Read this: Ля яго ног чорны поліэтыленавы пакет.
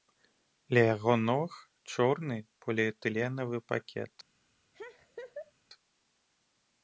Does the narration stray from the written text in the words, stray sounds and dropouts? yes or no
yes